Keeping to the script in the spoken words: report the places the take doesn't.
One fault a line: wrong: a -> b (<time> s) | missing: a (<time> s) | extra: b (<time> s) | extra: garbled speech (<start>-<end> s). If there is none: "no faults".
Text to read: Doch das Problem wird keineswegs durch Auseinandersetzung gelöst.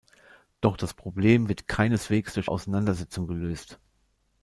no faults